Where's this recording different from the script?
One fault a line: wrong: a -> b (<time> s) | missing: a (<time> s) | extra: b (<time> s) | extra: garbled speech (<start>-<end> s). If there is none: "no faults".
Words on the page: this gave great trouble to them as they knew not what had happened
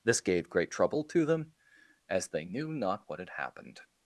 no faults